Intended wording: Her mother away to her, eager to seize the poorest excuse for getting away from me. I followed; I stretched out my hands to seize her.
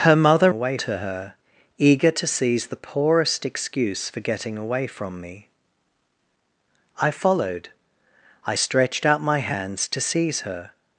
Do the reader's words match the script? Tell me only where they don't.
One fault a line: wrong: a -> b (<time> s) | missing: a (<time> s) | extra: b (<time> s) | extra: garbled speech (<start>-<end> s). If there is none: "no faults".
no faults